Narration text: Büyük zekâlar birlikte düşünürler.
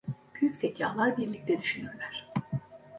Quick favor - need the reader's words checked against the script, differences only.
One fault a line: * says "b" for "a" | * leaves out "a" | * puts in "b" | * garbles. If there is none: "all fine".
all fine